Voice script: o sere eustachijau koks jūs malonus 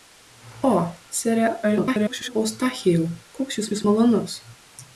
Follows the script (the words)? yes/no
no